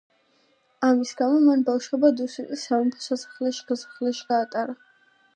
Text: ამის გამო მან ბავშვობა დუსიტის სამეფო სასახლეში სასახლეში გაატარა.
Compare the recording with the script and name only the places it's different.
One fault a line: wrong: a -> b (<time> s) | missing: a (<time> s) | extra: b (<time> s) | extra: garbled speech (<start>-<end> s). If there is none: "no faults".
no faults